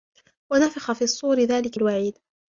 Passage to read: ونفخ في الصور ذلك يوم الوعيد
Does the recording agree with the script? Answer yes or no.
no